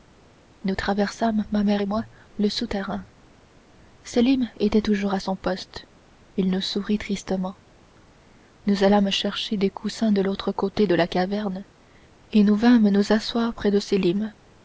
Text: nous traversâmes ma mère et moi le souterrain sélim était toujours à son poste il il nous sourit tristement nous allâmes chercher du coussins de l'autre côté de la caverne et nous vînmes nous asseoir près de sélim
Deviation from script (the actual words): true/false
true